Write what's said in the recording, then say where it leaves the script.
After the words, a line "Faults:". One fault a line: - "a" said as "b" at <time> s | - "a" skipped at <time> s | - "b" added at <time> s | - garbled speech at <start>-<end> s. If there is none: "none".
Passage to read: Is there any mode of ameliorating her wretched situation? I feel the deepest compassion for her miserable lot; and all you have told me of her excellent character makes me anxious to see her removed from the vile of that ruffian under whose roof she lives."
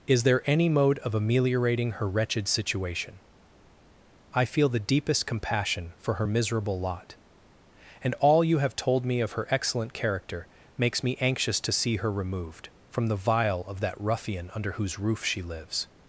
Is there any mode of ameliorating her wretched situation? I feel the deepest compassion for her miserable lot; and all you have told me of her excellent character makes me anxious to see her removed from the vile of that ruffian under whose roof she lives."
Faults:
none